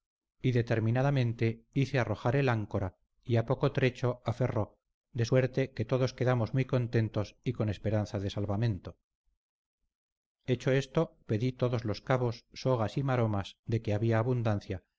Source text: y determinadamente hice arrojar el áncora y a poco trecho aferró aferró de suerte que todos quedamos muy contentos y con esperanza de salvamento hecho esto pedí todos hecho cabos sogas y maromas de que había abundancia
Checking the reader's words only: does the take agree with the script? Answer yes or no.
no